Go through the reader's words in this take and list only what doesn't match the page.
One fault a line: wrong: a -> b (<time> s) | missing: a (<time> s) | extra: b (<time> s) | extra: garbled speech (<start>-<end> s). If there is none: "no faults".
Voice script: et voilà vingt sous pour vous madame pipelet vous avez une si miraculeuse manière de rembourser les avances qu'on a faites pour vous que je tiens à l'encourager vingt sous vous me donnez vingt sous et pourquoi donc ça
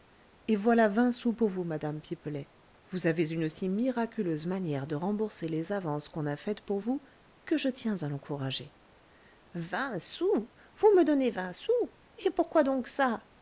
no faults